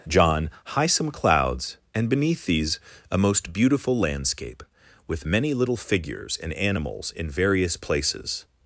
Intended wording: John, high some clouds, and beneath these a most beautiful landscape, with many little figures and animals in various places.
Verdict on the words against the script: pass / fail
pass